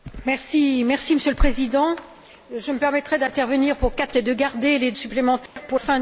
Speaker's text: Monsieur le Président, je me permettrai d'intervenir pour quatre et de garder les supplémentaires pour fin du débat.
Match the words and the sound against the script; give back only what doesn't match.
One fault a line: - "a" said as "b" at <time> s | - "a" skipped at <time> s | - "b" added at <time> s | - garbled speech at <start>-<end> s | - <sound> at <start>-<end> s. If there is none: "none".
- dropout at 5.5-5.6 s